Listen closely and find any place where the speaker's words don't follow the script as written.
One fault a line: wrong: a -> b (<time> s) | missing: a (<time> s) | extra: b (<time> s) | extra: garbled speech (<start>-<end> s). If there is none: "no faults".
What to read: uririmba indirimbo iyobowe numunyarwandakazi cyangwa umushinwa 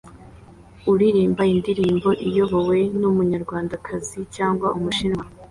no faults